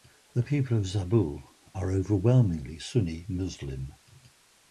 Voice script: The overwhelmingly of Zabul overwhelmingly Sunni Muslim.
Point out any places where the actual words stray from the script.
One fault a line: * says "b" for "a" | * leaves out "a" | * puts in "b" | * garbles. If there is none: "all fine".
* says "people" for "overwhelmingly"
* puts in "are"